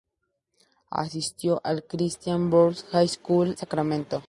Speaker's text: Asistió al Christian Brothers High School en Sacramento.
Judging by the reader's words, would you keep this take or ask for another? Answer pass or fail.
fail